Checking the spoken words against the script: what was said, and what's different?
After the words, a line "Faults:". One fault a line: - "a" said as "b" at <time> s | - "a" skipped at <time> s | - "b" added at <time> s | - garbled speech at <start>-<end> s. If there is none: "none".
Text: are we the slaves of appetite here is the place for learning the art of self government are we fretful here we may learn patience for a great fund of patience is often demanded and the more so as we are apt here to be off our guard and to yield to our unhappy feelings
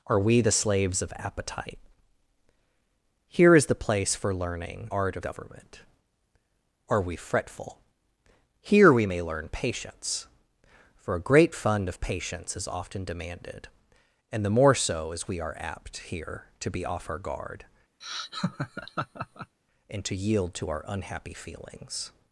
are we the slaves of appetite here is the place for learning art of government are we fretful here we may learn patience for a great fund of patience is often demanded and the more so as we are apt here to be off our guard and to yield to our unhappy feelings
Faults:
- "the" skipped at 4.9 s
- "self" skipped at 5.3 s